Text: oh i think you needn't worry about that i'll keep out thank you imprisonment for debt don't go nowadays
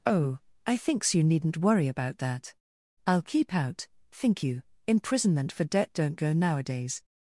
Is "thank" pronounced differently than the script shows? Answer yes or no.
yes